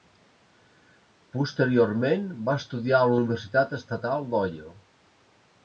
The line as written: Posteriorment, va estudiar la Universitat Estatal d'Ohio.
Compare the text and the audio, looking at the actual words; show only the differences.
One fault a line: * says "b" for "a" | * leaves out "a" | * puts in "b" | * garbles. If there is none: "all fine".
* puts in "a"